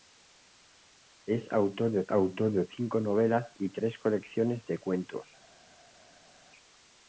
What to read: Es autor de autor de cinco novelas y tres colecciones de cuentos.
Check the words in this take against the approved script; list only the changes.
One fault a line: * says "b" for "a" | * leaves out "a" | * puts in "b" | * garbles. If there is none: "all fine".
all fine